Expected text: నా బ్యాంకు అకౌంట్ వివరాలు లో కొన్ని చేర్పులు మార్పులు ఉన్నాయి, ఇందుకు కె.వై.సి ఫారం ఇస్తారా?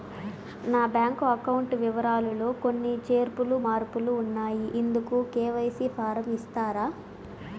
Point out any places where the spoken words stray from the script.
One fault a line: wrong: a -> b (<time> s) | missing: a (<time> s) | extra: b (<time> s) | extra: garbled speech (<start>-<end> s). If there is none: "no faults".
no faults